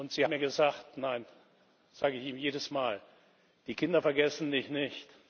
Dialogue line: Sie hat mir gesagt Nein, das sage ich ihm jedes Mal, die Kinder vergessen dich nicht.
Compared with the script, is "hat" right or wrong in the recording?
wrong